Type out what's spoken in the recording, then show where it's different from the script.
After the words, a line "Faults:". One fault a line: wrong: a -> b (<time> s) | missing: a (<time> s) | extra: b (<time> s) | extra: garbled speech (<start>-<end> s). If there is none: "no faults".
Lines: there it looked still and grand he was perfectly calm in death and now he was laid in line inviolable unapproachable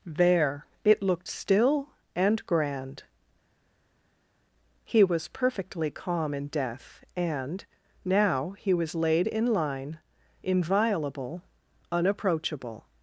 there it looked still and grand he was perfectly calm in death and now he was laid in line inviolable unapproachable
Faults:
no faults